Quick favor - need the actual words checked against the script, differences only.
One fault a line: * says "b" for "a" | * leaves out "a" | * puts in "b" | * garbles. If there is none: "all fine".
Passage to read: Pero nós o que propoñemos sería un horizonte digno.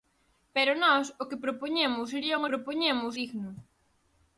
* says "propoñemos" for "horizonte"